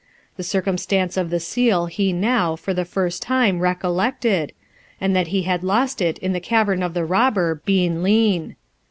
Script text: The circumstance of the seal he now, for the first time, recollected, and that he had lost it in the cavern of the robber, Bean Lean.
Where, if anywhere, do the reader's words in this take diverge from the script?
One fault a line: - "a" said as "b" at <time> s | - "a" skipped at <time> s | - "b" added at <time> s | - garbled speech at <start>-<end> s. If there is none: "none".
none